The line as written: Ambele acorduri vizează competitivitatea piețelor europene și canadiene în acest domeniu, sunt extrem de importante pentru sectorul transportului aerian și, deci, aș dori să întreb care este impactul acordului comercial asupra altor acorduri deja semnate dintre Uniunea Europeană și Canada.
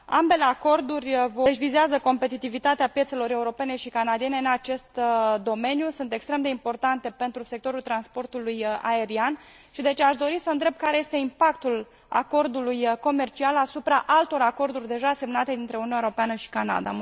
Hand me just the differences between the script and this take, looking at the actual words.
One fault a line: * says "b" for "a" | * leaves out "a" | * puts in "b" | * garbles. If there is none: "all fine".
all fine